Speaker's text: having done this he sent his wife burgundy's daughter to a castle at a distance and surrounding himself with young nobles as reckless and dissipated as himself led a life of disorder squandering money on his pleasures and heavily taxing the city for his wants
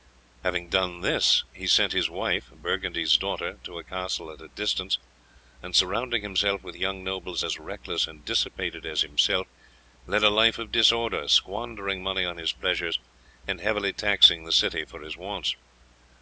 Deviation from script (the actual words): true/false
false